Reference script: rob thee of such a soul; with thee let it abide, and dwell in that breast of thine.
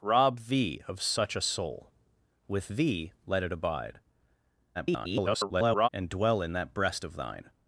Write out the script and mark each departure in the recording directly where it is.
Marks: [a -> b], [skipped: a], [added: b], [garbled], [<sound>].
rob thee of such a soul; with thee let it abide, [garbled] and dwell in that breast of thine.